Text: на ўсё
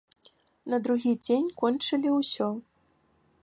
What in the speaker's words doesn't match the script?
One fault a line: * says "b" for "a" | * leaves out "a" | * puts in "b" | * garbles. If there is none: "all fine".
* puts in "другі дзень кончылі"